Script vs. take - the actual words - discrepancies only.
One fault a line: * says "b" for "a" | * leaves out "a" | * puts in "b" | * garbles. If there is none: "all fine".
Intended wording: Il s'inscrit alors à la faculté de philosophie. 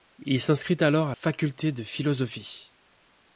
* leaves out "la"